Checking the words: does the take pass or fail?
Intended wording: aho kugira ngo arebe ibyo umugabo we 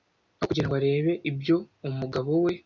pass